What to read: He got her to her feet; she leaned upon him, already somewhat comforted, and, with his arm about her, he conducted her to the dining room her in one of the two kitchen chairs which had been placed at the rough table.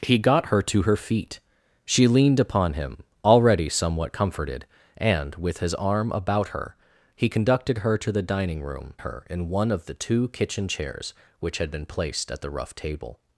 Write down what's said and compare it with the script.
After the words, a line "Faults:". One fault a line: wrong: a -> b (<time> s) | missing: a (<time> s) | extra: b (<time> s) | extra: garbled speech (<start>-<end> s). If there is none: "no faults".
He got her to her feet; she leaned upon him, already somewhat comforted, and, with his arm about her, he conducted her to the dining room her in one of the two kitchen chairs which had been placed at the rough table.
Faults:
no faults